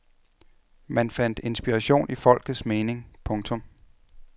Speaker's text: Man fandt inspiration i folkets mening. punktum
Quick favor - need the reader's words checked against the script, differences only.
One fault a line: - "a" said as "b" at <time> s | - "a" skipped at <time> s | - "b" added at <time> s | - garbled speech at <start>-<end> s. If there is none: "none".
none